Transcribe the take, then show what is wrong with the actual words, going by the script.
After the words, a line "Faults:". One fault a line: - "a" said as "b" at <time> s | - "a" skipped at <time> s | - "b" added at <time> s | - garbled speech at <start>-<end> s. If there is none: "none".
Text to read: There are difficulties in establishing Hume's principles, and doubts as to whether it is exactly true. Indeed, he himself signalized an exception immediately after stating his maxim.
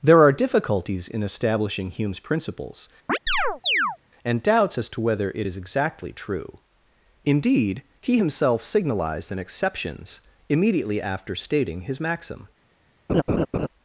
There are difficulties in establishing Hume's principles, and doubts as to whether it is exactly true. Indeed, he himself signalized an exceptions immediately after stating his maxim.
Faults:
- "exception" said as "exceptions" at 9.4 s